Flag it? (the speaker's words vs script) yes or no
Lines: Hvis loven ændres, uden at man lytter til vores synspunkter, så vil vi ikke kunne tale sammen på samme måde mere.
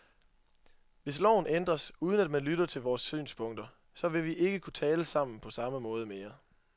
no